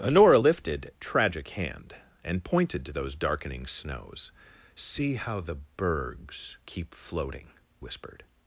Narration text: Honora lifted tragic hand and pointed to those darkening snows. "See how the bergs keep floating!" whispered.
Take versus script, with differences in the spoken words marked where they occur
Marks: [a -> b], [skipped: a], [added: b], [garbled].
Honora lifted tragic hand and pointed to those darkening snows. "See how the bergs keep floating!" whispered.